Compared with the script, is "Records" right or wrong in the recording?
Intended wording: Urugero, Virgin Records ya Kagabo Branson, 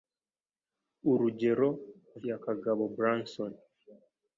wrong